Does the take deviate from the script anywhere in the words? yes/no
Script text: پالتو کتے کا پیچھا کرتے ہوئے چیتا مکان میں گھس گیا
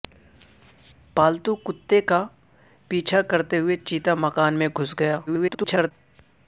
yes